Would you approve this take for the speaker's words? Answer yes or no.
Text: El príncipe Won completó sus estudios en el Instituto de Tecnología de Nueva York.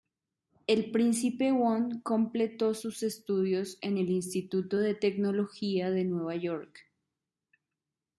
yes